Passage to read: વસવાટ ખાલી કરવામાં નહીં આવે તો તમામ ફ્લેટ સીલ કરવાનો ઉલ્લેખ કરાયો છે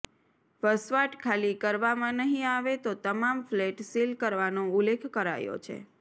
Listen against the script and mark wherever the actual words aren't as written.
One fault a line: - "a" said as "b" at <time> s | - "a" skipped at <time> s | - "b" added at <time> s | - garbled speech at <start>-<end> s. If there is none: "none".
none